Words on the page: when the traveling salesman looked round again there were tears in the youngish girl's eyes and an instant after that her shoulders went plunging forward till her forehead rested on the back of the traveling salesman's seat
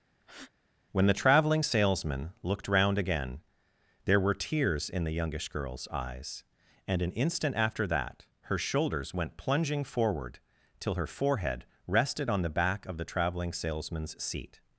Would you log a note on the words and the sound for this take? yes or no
yes